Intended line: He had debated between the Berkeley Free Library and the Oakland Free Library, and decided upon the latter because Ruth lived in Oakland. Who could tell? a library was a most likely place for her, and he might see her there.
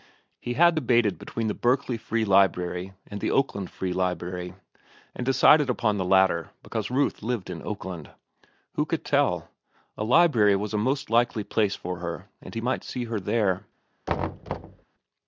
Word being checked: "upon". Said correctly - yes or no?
yes